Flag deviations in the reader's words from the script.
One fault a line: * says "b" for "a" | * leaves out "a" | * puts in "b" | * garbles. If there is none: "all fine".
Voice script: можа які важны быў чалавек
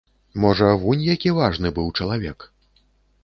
* puts in "вунь"